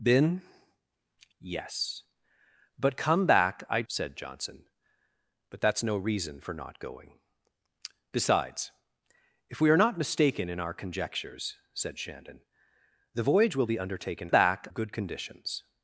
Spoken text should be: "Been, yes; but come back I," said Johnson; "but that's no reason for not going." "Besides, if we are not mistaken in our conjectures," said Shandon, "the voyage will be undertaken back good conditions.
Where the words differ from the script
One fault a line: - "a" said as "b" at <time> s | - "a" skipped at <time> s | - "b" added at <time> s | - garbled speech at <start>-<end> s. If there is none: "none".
none